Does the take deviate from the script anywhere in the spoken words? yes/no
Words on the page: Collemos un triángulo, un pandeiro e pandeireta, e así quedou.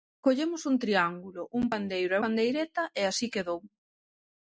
no